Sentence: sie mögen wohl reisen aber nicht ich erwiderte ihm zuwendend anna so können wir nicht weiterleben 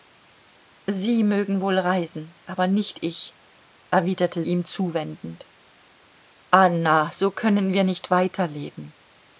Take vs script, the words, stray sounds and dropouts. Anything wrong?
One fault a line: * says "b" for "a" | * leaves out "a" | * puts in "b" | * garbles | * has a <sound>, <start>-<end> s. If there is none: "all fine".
all fine